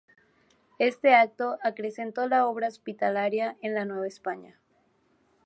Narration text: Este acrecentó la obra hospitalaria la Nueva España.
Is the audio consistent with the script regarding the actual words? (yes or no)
no